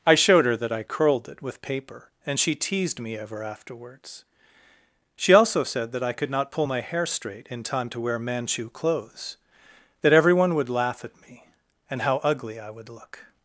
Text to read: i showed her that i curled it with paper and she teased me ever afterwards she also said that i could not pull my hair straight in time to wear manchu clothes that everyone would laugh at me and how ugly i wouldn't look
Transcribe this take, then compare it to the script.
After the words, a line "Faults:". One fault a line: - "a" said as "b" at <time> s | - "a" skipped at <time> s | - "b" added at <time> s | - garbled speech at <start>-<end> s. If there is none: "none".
i showed her that i curled it with paper and she teased me ever afterwards she also said that i could not pull my hair straight in time to wear manchu clothes that everyone would laugh at me and how ugly i would look
Faults:
- "wouldn't" said as "would" at 12.7 s